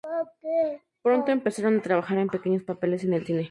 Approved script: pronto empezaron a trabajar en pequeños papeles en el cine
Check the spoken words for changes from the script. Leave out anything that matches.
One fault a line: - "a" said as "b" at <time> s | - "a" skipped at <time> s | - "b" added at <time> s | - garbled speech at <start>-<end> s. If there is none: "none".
none